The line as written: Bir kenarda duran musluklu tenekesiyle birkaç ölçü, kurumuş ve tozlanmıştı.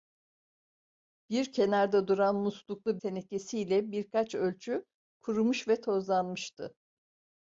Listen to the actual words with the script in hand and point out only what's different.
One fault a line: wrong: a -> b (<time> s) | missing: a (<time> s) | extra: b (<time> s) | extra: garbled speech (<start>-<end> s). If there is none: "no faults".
no faults